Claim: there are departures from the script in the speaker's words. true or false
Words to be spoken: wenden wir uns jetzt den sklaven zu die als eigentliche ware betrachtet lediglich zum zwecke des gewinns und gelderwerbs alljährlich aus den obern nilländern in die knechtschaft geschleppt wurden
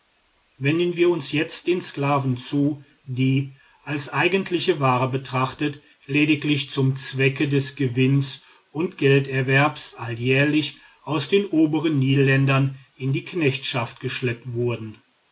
false